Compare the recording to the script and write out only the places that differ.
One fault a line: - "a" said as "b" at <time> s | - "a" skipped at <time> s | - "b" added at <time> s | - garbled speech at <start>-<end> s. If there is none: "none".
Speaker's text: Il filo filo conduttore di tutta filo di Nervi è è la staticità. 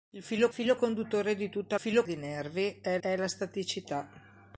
none